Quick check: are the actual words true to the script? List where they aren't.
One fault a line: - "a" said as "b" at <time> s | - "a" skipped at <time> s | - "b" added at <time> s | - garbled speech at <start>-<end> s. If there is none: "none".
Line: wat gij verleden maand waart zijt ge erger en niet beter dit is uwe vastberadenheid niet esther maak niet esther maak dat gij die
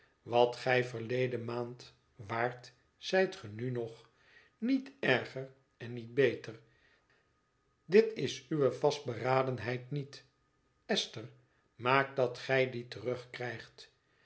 - "nu nog niet" added at 3.5 s
- "niet esther maak" skipped at 12.2 s